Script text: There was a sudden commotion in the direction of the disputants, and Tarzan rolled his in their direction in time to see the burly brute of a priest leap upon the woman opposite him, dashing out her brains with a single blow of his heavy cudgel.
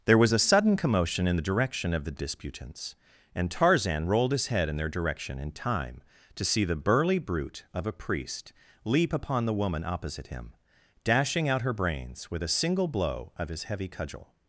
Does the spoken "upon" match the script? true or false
true